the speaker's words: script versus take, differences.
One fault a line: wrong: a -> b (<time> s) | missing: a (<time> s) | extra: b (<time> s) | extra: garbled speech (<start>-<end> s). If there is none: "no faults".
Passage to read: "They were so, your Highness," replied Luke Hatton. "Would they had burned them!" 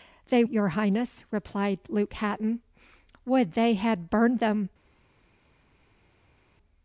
missing: were so (0.4 s)